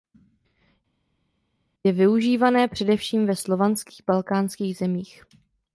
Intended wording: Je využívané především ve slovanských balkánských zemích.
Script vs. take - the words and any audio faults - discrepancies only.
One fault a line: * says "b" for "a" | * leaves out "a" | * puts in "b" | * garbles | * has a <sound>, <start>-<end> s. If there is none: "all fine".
all fine